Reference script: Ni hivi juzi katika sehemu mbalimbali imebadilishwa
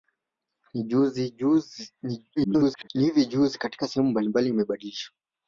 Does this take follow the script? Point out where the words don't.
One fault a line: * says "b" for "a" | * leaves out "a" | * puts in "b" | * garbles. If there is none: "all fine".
* garbles